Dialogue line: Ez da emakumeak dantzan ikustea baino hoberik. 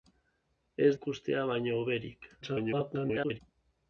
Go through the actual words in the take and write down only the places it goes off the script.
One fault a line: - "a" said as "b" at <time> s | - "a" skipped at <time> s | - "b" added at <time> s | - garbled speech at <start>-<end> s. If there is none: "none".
- "da emakumeak dantzan" skipped at 0.9 s
- garbled speech at 2.4-3.4 s